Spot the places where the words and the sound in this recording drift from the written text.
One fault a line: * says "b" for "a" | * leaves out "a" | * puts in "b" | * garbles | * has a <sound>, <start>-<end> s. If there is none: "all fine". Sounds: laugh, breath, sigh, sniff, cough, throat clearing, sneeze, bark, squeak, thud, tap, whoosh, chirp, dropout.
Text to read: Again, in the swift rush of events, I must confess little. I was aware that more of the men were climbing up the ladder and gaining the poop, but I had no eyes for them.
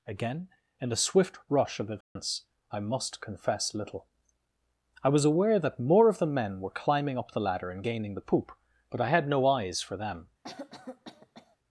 * has a dropout, 2.0-2.2 s
* has a cough, 10.4-11.6 s